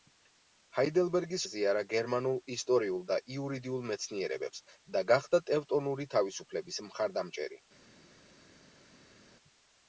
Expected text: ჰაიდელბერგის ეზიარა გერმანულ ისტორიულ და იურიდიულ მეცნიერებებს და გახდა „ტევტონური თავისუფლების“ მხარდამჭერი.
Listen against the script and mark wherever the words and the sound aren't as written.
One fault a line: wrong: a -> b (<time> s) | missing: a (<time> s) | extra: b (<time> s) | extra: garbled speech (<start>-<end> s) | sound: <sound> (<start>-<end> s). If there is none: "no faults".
no faults